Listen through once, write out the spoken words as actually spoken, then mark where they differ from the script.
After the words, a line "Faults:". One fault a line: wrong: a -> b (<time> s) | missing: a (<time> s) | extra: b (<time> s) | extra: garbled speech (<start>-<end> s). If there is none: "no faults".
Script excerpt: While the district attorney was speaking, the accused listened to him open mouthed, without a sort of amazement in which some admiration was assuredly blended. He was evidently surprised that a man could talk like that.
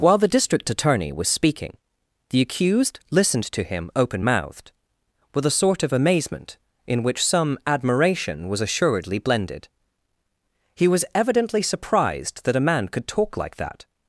While the district attorney was speaking, the accused listened to him open mouthed, with a sort of amazement in which some admiration was assuredly blended. He was evidently surprised that a man could talk like that.
Faults:
wrong: without -> with (5.3 s)